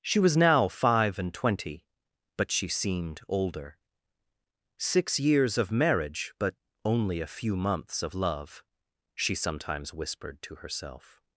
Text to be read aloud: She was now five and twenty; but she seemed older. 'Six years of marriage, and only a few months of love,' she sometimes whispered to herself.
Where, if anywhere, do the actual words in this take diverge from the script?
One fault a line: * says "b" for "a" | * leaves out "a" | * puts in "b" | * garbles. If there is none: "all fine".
* says "but" for "and"